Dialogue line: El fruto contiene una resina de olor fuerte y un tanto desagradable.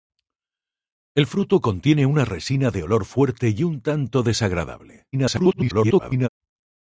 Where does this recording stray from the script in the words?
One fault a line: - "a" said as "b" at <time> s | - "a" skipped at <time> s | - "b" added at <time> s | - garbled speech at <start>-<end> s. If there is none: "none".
- garbled speech at 5.1-6.3 s